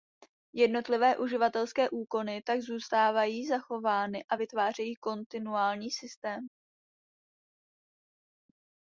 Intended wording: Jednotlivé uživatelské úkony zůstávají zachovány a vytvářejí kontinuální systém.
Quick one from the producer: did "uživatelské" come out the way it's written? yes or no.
yes